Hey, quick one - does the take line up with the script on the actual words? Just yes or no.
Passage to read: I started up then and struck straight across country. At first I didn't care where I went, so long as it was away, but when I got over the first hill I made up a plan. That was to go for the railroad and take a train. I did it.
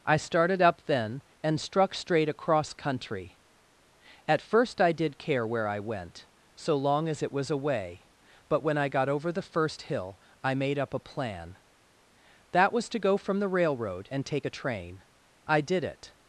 no